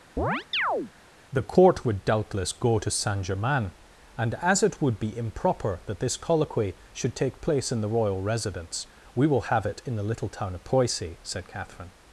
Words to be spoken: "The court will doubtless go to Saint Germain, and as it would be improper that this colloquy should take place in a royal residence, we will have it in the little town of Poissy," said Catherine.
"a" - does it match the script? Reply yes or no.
no